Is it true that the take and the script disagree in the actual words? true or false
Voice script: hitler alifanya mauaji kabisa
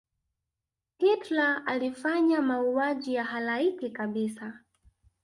true